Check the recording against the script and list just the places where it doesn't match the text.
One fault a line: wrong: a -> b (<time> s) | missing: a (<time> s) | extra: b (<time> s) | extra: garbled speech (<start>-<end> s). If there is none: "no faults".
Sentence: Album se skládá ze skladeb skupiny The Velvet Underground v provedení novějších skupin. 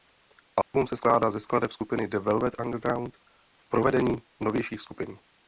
no faults